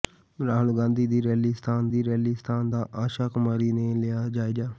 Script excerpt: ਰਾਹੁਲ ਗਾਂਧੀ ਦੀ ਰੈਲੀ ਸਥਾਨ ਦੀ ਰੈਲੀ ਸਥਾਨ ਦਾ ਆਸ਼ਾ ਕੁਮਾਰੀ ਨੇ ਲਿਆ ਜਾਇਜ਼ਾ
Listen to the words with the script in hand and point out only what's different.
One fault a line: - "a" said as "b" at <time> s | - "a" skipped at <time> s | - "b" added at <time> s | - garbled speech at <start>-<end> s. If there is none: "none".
none